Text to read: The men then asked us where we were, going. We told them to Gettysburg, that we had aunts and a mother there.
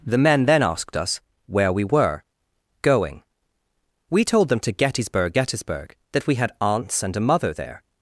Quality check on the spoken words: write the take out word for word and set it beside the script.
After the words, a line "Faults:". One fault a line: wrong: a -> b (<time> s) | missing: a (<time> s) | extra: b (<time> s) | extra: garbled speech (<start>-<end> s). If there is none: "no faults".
The men then asked us where we were, going. We told them to Gettysburg Gettysburg, that we had aunts and a mother there.
Faults:
extra: Gettysburg (5.3 s)